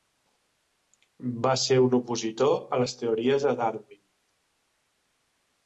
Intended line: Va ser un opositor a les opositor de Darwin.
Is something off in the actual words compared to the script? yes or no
yes